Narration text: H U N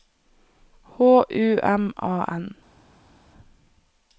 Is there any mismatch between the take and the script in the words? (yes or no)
yes